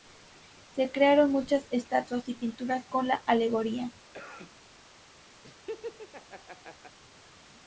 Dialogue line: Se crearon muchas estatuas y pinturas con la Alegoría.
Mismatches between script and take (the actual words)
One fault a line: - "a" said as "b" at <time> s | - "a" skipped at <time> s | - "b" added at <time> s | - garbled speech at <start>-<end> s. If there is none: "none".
none